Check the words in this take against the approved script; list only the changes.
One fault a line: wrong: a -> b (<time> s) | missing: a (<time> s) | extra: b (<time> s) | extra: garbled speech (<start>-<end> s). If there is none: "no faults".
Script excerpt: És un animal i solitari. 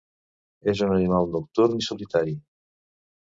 extra: nocturn (1.3 s)